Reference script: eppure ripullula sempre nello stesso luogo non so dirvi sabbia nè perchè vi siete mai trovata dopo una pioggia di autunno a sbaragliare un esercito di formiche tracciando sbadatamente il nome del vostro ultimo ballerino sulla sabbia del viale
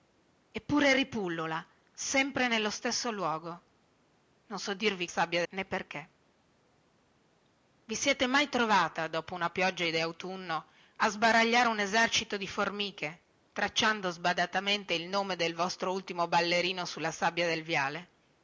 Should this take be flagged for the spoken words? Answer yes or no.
no